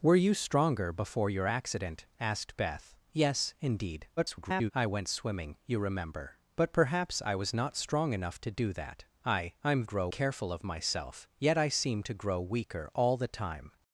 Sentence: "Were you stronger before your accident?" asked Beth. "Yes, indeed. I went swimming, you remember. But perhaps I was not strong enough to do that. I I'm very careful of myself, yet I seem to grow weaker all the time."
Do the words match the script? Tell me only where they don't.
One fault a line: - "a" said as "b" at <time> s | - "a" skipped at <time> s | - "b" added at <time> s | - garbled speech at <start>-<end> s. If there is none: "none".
- garbled speech at 4.2-4.7 s
- "very" said as "grow" at 9.8 s